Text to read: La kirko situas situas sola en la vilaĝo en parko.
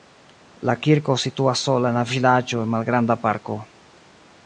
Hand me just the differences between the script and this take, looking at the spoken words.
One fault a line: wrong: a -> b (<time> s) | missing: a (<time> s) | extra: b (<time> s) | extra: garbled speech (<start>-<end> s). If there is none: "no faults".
missing: situas (1.6 s)
extra: malgranda (2.8 s)